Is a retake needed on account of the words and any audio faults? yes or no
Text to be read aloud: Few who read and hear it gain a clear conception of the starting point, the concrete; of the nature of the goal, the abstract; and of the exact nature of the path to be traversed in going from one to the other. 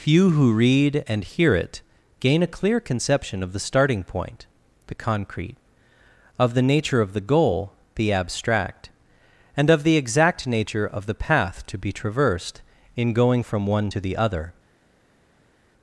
no